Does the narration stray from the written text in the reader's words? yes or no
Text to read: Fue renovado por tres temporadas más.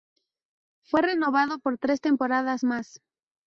no